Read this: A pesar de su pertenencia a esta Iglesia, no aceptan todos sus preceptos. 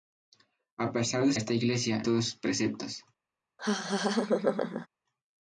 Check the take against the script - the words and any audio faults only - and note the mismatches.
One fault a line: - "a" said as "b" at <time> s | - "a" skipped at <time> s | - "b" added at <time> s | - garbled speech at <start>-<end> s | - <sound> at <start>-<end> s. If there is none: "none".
- "su pertenencia" skipped at 1.3 s
- "no aceptan" skipped at 2.0 s
- laugh at 3.6-4.9 s